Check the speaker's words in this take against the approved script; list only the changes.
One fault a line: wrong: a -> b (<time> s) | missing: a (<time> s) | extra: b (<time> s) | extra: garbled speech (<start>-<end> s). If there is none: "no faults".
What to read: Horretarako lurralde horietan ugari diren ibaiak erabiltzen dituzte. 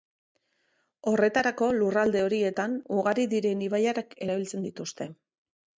no faults